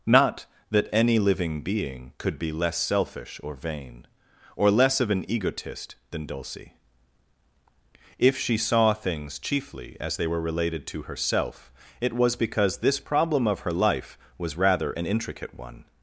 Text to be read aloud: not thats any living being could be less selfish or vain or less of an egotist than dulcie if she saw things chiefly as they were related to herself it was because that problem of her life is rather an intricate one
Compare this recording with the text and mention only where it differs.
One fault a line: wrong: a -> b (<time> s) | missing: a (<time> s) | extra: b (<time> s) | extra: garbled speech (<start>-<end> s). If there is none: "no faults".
wrong: thats -> that (0.7 s)
wrong: that -> this (12.8 s)
wrong: is -> was (14.4 s)